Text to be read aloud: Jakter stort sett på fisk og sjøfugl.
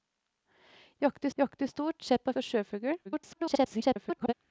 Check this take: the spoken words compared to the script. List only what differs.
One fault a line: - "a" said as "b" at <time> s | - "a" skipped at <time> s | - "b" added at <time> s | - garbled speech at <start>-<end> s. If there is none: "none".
- "jakter" added at 1.4 s
- "fisk" skipped at 2.3 s
- garbled speech at 3.0-4.3 s